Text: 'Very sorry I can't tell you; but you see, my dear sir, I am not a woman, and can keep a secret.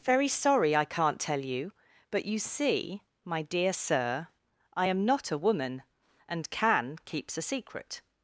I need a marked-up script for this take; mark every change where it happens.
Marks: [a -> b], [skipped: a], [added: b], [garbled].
'Very sorry I can't tell you; but you see, my dear sir, I am not a woman, and can [keep -> keeps] a secret.